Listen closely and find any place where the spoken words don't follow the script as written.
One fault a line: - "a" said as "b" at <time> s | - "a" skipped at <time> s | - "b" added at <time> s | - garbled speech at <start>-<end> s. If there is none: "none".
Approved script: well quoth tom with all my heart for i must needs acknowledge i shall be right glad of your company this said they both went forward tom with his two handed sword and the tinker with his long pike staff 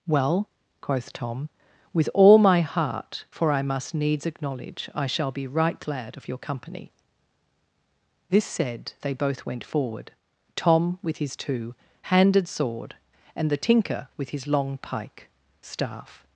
none